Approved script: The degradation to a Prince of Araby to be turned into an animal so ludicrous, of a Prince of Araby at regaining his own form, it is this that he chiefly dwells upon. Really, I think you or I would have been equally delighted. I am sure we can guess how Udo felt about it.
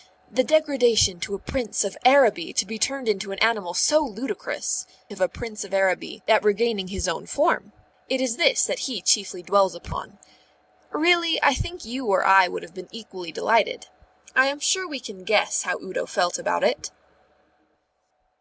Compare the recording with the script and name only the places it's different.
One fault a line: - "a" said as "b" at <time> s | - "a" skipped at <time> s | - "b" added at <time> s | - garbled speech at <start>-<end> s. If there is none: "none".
none